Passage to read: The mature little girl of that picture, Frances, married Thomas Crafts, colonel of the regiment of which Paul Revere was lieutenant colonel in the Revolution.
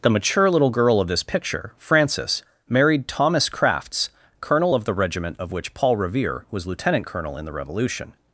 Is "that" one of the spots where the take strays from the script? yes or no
yes